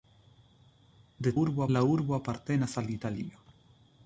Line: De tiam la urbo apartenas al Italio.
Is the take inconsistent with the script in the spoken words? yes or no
yes